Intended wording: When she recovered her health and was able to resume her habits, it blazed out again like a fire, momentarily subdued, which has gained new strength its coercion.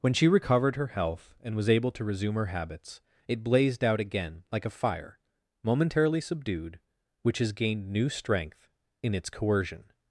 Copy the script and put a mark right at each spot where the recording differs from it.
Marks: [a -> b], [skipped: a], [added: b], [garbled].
When she recovered her health and was able to resume her habits, it blazed out again like a fire, momentarily subdued, which has gained new strength [added: in] its coercion.